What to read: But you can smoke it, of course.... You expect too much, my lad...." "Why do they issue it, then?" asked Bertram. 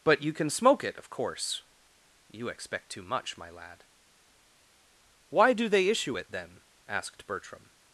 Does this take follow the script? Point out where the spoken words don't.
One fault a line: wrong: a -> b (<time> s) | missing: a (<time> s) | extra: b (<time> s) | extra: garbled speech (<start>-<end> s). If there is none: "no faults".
no faults